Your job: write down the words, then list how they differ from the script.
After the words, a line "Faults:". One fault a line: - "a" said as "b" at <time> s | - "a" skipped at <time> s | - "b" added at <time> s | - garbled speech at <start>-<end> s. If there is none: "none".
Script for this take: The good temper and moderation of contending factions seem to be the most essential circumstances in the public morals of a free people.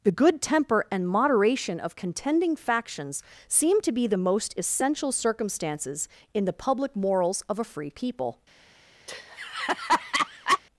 The good temper and moderation of contending factions seem to be the most essential circumstances in the public morals of a free people.
Faults:
none